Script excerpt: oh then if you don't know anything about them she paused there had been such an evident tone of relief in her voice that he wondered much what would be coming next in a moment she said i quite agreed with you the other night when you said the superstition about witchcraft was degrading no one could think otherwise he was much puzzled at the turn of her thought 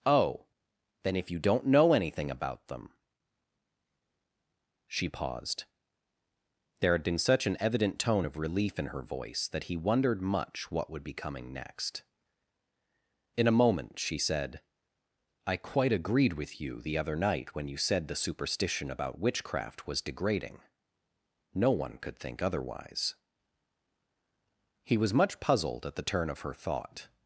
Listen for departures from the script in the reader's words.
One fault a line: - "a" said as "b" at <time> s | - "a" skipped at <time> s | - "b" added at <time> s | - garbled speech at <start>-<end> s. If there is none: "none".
none